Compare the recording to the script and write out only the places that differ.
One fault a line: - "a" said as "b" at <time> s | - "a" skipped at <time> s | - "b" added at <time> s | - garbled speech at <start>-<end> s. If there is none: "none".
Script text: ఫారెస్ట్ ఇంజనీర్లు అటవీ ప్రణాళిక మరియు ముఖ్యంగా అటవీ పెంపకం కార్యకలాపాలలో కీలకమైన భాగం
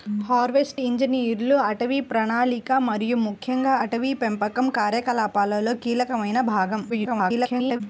- garbled speech at 6.9-7.8 s